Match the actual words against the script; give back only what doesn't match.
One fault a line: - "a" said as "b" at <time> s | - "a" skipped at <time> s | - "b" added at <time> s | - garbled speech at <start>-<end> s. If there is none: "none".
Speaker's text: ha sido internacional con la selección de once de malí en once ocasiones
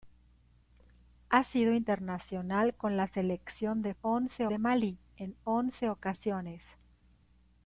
none